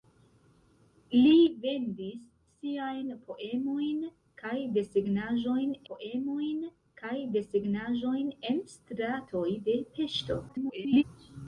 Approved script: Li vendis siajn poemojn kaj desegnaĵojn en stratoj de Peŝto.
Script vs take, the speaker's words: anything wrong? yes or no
yes